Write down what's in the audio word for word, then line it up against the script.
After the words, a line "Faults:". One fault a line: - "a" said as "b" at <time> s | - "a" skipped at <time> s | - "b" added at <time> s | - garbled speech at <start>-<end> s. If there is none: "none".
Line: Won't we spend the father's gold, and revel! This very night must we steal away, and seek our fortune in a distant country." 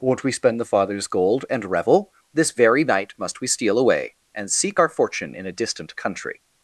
Won't we spend the father's gold, and revel! This very night must we steal away, and seek our fortune in a distant country."
Faults:
none